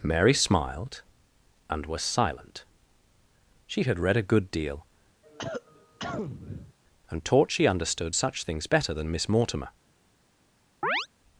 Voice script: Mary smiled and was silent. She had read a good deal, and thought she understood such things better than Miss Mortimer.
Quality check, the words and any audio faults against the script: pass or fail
fail